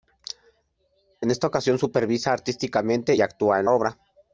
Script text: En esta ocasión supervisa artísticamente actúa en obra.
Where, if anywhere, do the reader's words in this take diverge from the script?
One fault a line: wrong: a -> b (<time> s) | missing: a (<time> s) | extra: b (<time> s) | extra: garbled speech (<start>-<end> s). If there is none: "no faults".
no faults